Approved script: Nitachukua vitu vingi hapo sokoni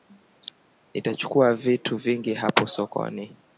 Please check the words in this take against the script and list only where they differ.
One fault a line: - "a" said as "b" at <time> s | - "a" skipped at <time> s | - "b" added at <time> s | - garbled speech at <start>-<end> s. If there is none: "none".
none